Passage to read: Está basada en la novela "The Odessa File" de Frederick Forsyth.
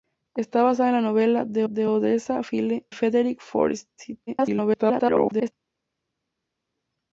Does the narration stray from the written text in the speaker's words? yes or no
yes